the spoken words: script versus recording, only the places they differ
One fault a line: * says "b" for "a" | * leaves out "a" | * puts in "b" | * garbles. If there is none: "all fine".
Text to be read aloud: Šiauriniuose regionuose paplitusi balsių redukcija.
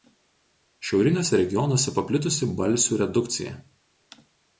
all fine